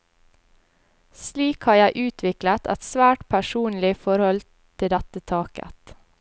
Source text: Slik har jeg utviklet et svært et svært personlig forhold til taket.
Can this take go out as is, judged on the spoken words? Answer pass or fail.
fail